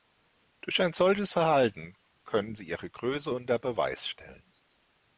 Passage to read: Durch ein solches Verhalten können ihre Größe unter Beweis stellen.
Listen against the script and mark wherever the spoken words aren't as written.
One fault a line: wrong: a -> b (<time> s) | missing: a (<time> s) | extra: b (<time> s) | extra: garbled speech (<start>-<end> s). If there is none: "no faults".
extra: sie (2.5 s)